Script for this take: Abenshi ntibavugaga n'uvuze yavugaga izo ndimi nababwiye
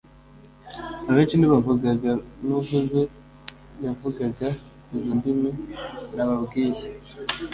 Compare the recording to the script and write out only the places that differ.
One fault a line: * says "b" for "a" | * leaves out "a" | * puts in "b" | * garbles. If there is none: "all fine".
all fine